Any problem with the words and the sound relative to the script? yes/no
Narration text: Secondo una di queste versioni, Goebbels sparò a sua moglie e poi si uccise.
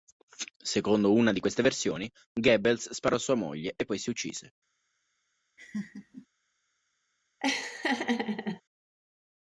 yes